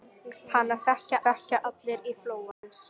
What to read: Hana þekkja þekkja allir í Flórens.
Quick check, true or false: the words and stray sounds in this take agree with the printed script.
false